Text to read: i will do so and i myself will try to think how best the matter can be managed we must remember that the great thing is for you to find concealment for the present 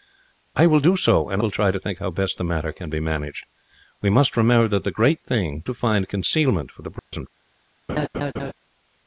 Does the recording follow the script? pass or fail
fail